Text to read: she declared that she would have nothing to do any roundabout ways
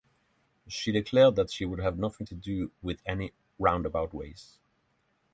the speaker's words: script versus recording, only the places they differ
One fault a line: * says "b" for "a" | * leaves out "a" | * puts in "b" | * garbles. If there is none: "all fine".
* puts in "with"